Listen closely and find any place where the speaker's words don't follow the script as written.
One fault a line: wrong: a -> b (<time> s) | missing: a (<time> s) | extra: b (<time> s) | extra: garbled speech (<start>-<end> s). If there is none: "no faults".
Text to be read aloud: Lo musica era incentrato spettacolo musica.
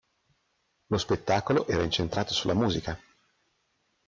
wrong: musica -> spettacolo (1.0 s)
wrong: spettacolo -> sulla (2.3 s)